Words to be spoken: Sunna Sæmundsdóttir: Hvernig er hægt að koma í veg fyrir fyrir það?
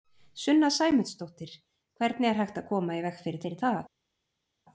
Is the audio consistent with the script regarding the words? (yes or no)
yes